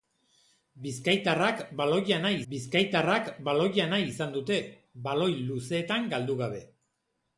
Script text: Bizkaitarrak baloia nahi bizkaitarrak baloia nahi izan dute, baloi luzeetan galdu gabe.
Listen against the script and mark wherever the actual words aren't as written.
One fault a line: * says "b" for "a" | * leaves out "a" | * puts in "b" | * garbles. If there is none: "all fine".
all fine